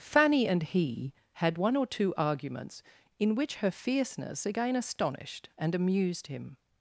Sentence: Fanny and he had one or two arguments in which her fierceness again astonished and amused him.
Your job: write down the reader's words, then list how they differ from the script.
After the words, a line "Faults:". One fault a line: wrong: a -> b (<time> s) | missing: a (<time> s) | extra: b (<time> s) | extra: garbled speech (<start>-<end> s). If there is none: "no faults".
Fanny and he had one or two arguments in which her fierceness again astonished and amused him.
Faults:
no faults